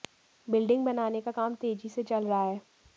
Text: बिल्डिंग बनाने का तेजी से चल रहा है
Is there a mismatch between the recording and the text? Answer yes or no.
yes